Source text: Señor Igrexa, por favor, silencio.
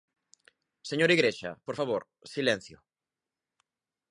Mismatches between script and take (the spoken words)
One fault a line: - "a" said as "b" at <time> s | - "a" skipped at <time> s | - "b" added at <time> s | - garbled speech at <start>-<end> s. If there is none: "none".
none